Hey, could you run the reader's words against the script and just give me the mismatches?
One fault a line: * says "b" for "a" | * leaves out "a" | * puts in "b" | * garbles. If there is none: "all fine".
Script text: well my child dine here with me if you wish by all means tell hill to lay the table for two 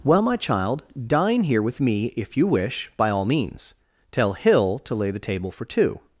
all fine